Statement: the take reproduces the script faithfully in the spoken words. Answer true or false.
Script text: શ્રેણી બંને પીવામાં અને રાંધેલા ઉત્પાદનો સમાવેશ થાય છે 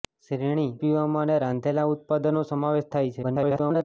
false